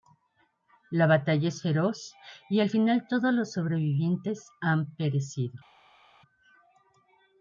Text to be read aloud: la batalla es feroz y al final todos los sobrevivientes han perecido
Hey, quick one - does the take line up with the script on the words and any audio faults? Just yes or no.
yes